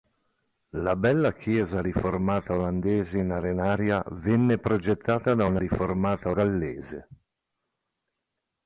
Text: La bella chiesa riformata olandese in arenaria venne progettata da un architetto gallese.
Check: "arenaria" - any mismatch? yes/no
no